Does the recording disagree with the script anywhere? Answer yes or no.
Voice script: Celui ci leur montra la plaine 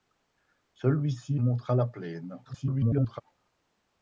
yes